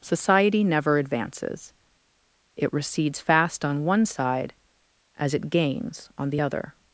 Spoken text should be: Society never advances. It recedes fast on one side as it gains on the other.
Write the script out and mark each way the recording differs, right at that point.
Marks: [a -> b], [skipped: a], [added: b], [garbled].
Society never advances. It recedes fast on one side as it gains on the other.